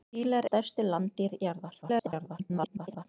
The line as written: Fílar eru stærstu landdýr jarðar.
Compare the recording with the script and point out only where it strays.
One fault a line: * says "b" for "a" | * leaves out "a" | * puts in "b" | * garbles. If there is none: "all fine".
* leaves out "eru"
* garbles